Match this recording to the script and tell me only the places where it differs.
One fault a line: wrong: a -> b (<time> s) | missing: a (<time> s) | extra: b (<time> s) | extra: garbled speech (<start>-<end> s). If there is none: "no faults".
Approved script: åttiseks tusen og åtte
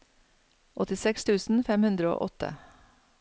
extra: fem hundre (1.7 s)